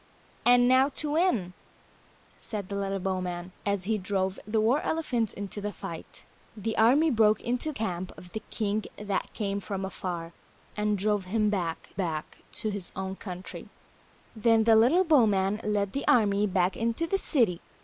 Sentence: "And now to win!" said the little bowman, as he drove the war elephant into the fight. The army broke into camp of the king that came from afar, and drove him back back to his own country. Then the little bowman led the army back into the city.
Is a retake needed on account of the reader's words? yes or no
no